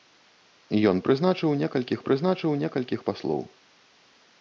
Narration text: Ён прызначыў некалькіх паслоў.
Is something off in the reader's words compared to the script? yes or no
yes